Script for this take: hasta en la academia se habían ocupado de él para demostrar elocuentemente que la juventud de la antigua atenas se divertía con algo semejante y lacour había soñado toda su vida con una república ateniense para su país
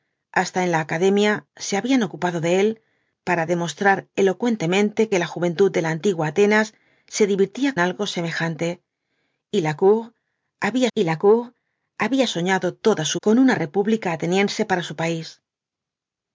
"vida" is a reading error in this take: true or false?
true